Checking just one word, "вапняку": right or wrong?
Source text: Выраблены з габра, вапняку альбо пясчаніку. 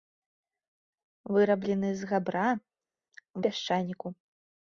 wrong